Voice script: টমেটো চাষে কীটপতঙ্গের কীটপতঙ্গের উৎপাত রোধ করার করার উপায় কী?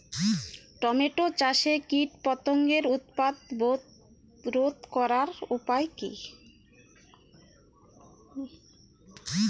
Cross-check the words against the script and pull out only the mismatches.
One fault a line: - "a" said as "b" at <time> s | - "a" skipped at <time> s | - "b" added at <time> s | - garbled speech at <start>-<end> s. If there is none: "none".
- "কীটপতঙ্গের" skipped at 2.8 s
- "করার" skipped at 5.3 s